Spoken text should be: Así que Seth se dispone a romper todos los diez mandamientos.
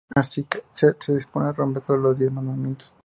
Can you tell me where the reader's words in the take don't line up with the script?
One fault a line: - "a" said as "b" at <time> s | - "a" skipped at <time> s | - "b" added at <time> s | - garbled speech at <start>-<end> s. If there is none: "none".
none